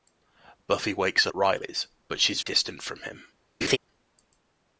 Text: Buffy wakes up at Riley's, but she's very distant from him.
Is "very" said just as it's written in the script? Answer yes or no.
no